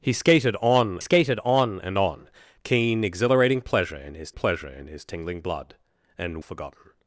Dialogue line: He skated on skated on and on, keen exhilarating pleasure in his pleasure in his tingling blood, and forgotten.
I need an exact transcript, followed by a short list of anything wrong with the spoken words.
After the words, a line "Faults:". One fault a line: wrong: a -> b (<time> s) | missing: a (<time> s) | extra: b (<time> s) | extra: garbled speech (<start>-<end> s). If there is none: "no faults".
He skated on skated on and on, keen exhilarating pleasure in his pleasure in his tingling blood, and forgotten.
Faults:
no faults